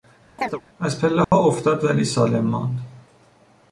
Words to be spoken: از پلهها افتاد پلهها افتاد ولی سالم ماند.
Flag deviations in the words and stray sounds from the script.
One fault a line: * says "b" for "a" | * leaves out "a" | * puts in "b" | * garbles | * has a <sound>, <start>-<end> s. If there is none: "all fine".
* has a chirp, 0.4-0.6 s
* has a dropout, 1.2-1.3 s
* leaves out "پلهها افتاد"